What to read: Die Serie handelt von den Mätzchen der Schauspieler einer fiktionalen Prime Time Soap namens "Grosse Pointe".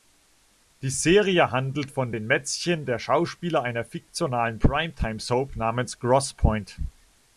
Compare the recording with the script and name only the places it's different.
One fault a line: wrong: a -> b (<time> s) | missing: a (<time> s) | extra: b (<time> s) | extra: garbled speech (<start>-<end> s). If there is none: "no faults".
no faults